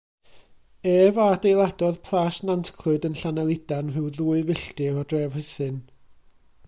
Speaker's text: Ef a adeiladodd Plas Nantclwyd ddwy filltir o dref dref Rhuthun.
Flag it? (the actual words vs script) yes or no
yes